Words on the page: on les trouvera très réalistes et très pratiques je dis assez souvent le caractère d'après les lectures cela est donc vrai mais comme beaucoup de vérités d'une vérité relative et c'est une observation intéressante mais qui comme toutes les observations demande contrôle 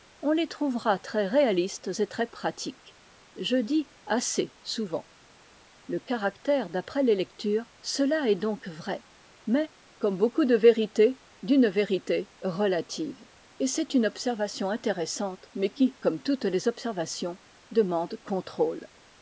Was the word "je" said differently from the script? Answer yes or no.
no